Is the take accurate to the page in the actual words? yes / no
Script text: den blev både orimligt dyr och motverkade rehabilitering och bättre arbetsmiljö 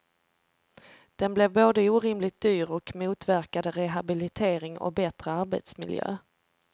yes